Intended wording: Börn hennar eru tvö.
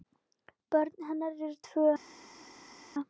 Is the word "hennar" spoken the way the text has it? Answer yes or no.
yes